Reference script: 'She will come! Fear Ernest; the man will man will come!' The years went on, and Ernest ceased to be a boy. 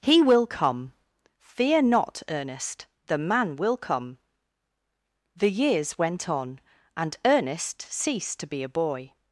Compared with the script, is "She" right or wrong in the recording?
wrong